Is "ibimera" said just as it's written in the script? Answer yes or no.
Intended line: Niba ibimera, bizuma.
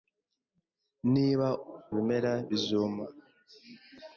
yes